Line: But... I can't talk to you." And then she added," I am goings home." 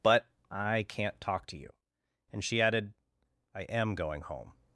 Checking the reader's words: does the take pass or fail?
fail